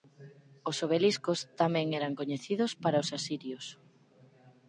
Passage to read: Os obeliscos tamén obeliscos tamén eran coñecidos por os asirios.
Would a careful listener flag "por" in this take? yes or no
yes